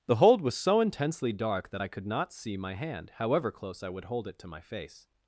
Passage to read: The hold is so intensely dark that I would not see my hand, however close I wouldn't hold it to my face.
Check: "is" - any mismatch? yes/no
yes